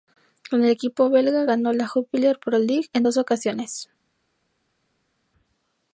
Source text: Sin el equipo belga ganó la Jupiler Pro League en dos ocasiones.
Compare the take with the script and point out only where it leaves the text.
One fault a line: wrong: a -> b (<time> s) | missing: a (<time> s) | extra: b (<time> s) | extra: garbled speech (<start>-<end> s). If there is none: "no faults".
wrong: Sin -> Con (0.5 s)